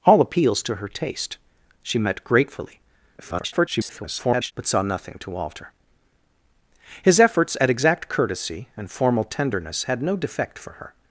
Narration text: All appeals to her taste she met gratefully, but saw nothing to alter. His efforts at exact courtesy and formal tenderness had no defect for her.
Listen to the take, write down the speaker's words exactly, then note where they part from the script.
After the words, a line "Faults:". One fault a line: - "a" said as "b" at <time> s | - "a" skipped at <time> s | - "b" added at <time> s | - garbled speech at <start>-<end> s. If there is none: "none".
All appeals to her taste she met gratefully, [garbled] but saw nothing to alter. His efforts at exact courtesy and formal tenderness had no defect for her.
Faults:
- garbled speech at 3.2-4.5 s